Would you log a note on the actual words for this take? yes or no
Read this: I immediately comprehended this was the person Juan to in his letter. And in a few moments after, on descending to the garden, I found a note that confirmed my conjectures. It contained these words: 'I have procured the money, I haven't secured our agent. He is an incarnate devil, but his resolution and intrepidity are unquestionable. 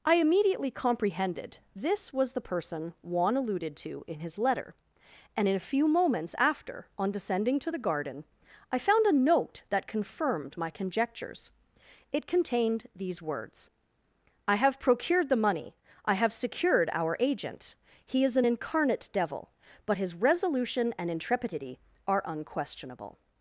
yes